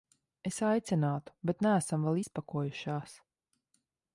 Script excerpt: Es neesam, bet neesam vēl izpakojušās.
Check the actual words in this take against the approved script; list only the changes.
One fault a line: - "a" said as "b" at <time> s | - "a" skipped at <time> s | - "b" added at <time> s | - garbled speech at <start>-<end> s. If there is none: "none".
- "neesam" said as "aicinātu" at 0.7 s